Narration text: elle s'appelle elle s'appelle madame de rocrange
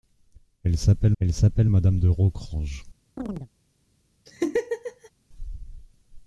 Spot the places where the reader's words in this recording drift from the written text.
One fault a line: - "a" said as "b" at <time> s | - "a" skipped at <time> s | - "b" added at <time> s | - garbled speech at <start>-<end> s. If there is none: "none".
none